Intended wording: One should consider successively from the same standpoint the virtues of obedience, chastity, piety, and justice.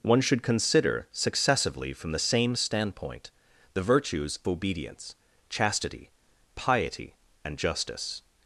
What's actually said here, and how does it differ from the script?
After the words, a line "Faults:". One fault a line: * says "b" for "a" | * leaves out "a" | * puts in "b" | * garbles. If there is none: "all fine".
One should consider successively from the same standpoint the virtues obedience, chastity, piety, and justice.
Faults:
* leaves out "of"